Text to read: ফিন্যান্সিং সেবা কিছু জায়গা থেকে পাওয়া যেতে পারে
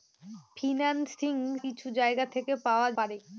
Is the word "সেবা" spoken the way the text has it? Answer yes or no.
no